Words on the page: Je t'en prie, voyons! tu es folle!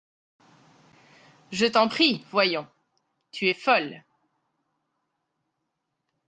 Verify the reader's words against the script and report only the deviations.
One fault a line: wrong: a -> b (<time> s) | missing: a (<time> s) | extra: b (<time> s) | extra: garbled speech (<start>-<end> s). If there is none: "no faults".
no faults